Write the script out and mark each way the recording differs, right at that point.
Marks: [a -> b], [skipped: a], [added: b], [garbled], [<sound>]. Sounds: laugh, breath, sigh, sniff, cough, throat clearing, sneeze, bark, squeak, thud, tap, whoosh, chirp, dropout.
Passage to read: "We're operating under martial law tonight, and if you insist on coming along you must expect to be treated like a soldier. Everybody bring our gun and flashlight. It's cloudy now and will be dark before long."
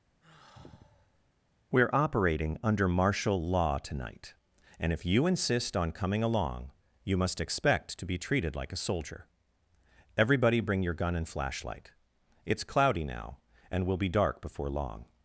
[sigh] "We're operating under martial law tonight, and if you insist on coming along you must expect to be treated like a soldier. Everybody bring [our -> your] gun and flashlight. It's cloudy now and will be dark before long."